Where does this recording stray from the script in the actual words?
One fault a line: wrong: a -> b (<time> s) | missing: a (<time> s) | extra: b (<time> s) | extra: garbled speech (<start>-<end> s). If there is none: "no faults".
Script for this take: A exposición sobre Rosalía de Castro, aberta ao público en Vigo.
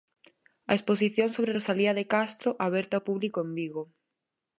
no faults